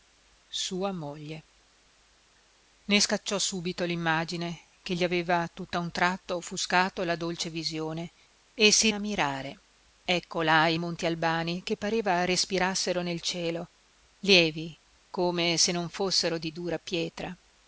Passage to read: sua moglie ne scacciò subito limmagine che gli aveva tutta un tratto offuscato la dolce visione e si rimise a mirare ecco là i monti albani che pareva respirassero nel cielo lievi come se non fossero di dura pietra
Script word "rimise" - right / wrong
wrong